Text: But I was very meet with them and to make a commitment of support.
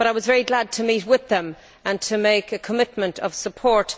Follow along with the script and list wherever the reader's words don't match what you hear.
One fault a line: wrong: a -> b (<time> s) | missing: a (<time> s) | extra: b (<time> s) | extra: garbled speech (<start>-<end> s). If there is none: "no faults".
extra: glad to (0.4 s)